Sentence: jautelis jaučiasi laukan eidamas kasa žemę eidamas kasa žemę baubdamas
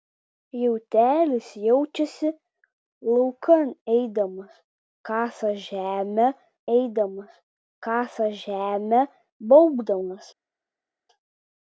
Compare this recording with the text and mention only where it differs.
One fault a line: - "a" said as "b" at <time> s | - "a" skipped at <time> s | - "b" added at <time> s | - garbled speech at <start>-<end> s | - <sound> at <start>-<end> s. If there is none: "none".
none